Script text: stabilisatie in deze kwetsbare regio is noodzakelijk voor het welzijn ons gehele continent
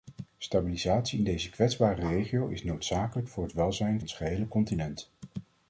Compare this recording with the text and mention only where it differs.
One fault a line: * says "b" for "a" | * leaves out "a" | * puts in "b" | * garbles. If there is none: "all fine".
all fine